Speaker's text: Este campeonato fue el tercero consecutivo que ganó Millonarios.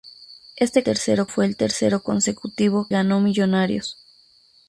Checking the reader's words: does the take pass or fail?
fail